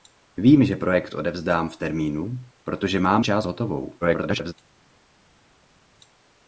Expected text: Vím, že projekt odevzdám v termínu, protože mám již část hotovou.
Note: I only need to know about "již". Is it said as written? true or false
false